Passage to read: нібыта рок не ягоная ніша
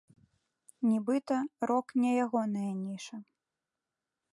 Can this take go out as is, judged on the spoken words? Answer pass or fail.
pass